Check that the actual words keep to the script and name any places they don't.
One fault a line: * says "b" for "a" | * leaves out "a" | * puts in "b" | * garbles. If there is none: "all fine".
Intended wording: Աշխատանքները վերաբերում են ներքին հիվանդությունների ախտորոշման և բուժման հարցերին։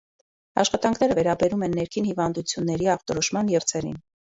* leaves out "և բուժման"